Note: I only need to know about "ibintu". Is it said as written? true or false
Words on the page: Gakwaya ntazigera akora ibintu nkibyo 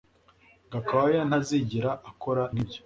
false